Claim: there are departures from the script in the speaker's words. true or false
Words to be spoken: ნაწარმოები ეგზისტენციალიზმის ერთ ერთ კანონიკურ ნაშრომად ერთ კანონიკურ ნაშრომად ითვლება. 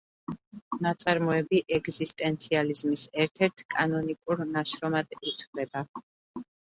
true